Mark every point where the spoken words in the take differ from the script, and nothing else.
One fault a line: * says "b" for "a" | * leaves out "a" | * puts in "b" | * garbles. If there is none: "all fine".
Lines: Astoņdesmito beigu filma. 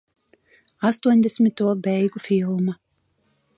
all fine